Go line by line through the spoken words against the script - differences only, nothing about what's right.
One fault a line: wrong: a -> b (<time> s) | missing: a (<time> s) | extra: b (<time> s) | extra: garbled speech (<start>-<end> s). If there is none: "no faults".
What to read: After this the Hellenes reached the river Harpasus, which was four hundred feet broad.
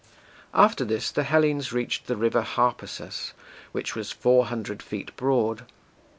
no faults